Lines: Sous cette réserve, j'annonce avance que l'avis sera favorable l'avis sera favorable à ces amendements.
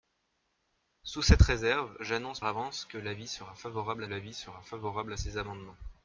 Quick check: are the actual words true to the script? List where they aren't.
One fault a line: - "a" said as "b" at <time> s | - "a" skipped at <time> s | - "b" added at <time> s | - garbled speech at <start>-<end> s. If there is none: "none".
none